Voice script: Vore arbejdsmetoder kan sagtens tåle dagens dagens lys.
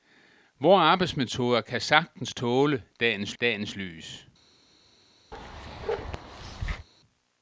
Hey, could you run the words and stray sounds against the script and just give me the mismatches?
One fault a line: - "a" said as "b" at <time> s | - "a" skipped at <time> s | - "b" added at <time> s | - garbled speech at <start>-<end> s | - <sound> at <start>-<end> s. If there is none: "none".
- bark at 5.3-6.9 s